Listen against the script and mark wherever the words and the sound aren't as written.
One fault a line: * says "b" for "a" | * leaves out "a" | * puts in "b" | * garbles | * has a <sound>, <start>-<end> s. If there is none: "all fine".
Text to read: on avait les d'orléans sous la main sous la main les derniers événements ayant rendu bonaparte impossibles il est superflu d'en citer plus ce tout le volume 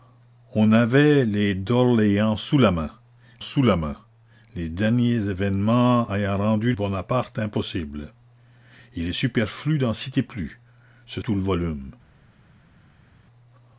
all fine